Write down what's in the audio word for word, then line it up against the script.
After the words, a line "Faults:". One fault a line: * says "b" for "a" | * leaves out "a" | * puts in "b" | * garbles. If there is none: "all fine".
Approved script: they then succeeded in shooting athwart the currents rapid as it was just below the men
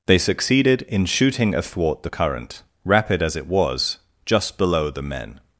they succeeded in shooting athwart the current rapid as it was just below the men
Faults:
* leaves out "then"
* says "current" for "currents"